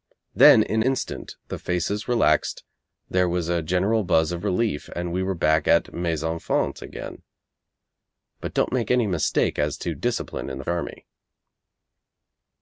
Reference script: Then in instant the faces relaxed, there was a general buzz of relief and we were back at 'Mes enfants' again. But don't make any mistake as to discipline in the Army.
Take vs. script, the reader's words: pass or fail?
pass